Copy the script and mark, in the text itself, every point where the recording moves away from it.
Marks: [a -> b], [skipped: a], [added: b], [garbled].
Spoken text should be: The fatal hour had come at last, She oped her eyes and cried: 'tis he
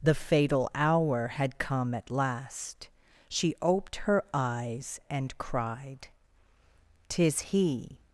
The fatal hour had come at last, She oped her eyes and cried: 'tis he